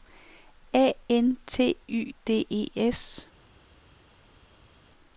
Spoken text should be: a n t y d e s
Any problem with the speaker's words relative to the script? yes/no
no